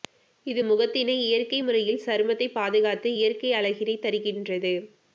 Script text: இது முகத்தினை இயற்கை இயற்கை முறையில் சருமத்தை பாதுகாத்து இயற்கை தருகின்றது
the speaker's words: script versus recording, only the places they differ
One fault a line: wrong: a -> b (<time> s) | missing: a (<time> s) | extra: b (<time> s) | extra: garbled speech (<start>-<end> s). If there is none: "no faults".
missing: இயற்கை (1.6 s)
extra: அழகினை (3.5 s)